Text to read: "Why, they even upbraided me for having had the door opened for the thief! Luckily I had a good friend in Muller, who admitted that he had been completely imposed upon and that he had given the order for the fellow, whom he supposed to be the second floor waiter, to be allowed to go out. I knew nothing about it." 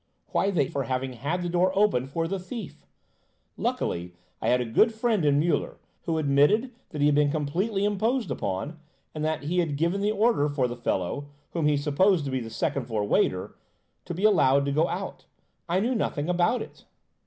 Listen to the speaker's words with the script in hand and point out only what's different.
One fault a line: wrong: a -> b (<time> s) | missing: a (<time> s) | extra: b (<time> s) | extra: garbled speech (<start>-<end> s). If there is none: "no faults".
missing: even upbraided me (0.7 s)